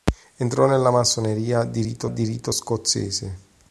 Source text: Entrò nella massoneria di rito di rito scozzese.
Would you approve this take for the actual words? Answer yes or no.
yes